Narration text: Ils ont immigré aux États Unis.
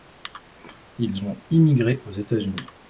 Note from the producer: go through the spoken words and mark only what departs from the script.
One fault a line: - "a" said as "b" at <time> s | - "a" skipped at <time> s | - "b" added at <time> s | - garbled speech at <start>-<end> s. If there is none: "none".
none